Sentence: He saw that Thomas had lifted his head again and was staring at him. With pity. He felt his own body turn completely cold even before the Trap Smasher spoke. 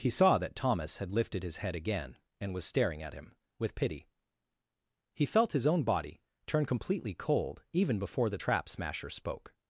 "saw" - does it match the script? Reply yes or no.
yes